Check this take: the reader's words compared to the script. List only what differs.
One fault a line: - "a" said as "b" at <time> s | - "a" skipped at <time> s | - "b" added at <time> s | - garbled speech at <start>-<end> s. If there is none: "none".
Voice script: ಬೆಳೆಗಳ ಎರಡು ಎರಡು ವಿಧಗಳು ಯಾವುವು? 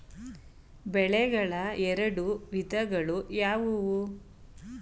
- "ಎರಡು" skipped at 2.2 s